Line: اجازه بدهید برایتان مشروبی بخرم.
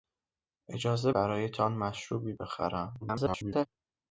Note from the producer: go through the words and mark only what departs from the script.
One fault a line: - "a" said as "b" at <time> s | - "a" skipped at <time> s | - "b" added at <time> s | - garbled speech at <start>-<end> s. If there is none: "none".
- "بدهید" skipped at 1.1 s
- garbled speech at 3.0-3.7 s